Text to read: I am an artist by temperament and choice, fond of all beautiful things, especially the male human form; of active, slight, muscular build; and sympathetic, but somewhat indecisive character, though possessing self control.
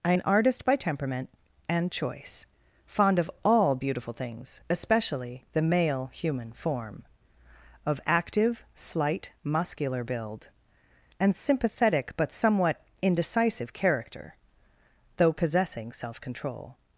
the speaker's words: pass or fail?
fail